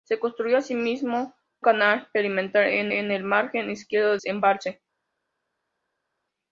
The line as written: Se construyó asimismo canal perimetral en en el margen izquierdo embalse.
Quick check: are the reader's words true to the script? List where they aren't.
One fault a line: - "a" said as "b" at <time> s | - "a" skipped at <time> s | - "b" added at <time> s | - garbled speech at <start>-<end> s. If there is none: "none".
none